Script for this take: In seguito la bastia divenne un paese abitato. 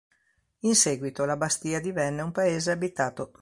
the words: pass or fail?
pass